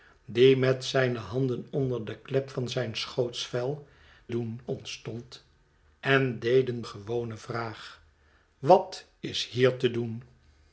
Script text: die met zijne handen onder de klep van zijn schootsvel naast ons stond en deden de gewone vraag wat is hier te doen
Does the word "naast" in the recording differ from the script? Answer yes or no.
yes